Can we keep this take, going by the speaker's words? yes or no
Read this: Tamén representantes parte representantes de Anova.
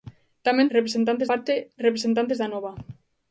yes